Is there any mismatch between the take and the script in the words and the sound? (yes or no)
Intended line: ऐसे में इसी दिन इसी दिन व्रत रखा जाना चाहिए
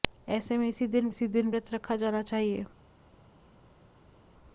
no